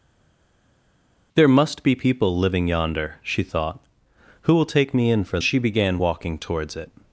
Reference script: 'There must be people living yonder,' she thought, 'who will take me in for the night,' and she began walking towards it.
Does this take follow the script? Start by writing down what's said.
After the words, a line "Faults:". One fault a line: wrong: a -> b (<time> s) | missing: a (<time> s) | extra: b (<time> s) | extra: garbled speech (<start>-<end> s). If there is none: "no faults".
'There must be people living yonder,' she thought, 'who will take me in for she began walking towards it.
Faults:
missing: the night and (5.4 s)